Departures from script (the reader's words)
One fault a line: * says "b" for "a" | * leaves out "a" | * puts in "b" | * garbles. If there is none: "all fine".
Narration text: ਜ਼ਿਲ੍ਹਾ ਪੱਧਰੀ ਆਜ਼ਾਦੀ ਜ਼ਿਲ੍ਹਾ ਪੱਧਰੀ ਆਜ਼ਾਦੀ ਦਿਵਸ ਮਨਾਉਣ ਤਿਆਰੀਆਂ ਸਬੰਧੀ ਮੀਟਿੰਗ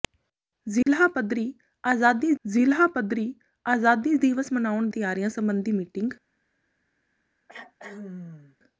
all fine